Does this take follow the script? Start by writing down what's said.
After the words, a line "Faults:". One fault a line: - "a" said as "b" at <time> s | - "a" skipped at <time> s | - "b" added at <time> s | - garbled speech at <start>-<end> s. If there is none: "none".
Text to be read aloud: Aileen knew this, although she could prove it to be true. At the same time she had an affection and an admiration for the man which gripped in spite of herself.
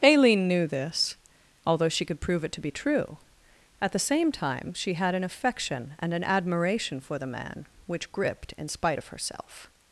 Aileen knew this, although she could prove it to be true. At the same time she had an affection and an admiration for the man which gripped in spite of herself.
Faults:
none